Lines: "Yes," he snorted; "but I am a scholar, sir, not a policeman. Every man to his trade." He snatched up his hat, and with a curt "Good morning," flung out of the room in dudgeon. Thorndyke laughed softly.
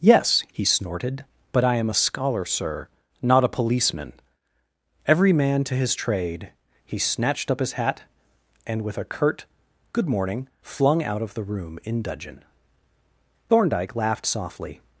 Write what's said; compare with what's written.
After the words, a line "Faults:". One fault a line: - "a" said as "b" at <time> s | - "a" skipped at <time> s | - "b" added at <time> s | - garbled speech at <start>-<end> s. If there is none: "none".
"Yes," he snorted; "but I am a scholar, sir, not a policeman. Every man to his trade." He snatched up his hat, and with a curt "Good morning," flung out of the room in dudgeon. Thorndyke laughed softly.
Faults:
none